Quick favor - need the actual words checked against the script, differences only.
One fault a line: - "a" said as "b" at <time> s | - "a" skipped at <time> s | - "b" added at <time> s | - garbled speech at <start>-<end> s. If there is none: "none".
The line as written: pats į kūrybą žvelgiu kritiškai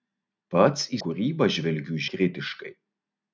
none